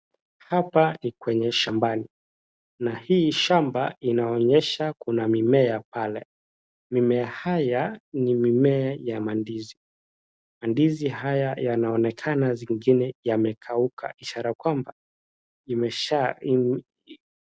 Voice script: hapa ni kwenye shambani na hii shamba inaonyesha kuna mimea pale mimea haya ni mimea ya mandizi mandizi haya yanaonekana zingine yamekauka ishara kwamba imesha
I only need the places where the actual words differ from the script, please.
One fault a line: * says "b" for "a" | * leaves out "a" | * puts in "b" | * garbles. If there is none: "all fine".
all fine